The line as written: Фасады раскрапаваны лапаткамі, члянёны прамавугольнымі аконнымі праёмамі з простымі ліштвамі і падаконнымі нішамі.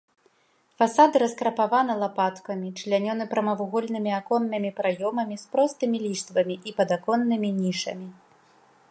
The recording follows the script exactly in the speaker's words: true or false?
true